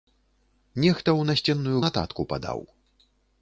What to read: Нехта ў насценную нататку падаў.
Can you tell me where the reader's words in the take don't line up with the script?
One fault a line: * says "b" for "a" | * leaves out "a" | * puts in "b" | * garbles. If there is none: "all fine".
all fine